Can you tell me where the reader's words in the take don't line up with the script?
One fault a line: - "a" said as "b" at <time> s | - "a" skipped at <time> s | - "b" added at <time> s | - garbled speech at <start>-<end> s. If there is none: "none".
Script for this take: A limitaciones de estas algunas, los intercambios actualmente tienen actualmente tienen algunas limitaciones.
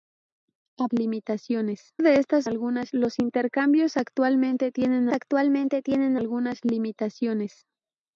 none